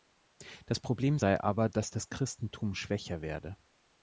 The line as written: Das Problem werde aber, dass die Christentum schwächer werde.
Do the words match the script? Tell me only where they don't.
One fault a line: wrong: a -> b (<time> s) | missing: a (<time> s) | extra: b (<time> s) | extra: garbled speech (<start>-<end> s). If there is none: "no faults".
wrong: werde -> sei (1.2 s)
wrong: die -> das (1.9 s)